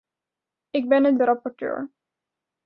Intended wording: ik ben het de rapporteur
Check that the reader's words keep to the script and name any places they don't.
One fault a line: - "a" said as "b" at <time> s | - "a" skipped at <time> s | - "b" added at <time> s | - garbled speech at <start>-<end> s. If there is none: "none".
none